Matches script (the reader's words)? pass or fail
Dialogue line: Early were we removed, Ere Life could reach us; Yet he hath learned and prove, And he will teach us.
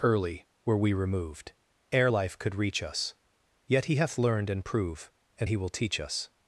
pass